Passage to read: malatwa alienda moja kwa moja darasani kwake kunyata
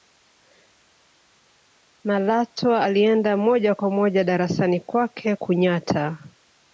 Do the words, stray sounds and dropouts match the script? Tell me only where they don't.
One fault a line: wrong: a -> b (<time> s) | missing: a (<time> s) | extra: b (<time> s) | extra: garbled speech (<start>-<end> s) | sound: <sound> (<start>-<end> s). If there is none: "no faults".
no faults